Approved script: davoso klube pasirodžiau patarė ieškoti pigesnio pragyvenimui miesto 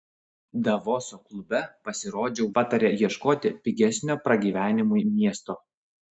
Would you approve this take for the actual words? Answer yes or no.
yes